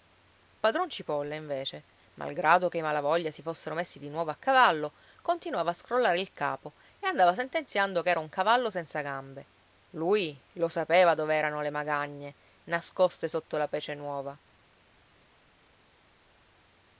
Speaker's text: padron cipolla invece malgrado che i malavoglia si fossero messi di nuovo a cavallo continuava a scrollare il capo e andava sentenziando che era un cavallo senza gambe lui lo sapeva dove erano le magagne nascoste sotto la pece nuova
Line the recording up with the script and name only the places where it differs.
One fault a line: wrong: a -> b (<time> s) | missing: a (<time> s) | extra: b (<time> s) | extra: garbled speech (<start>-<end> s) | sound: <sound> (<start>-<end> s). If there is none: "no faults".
no faults